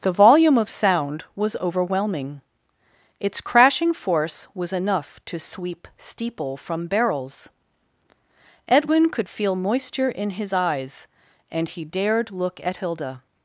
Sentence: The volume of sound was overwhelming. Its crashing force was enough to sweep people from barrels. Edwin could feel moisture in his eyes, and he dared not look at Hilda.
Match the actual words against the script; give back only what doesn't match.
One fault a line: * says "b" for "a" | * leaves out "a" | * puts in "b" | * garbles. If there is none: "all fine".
* says "steeple" for "people"
* leaves out "not"